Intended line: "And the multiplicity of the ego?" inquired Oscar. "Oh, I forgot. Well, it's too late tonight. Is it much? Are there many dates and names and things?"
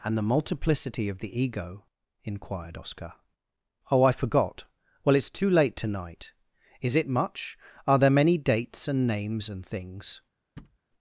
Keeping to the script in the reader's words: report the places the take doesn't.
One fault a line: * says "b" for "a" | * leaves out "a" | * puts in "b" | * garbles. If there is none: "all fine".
all fine